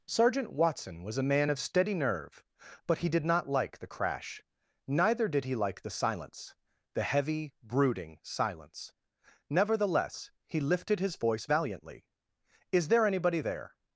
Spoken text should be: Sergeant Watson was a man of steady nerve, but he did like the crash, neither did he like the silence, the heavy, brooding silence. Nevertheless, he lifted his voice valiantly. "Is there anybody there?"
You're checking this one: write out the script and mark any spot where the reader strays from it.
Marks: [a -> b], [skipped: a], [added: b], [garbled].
Sergeant Watson was a man of steady nerve, but he did [added: not] like the crash, neither did he like the silence, the heavy, brooding silence. Nevertheless, he lifted his voice valiantly. "Is there anybody there?"